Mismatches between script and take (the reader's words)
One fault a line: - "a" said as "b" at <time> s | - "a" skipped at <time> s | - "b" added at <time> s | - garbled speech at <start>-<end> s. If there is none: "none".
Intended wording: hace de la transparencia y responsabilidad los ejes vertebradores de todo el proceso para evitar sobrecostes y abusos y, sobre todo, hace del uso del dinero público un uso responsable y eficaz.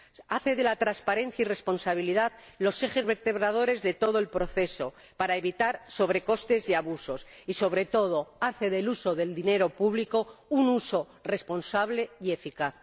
none